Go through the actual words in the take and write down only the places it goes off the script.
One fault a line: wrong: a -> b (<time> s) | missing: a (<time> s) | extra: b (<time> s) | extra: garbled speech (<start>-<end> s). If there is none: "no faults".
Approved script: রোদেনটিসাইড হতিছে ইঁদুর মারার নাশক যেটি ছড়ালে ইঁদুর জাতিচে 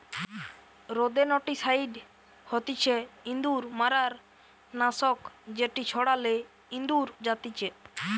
no faults